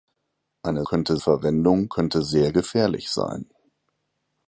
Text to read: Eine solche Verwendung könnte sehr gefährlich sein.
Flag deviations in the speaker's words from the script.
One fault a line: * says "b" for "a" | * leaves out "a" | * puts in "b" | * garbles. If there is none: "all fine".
* says "könnte" for "solche"